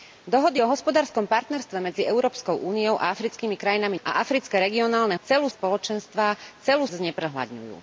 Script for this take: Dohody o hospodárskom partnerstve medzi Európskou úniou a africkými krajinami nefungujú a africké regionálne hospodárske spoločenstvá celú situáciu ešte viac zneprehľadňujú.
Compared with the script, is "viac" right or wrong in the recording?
wrong